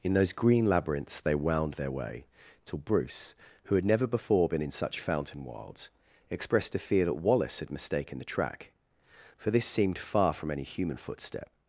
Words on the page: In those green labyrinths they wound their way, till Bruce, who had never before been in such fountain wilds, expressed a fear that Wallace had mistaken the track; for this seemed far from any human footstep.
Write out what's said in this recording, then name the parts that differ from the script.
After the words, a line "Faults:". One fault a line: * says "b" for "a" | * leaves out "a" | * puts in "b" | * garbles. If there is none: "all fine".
In those green labyrinths they wound their way, till Bruce, who had never before been in such fountain wilds, expressed a fear that Wallace had mistaken the track; for this seemed far from any human footstep.
Faults:
all fine